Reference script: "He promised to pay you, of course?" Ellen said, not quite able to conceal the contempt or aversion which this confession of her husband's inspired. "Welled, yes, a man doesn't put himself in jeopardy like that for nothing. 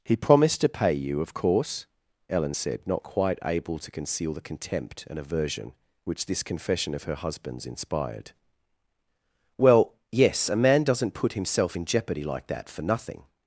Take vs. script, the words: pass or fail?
fail